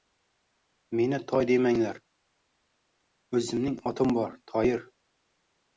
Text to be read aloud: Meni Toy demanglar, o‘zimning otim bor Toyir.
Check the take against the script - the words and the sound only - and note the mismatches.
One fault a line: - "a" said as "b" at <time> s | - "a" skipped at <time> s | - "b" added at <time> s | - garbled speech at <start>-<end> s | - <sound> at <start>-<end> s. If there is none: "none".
none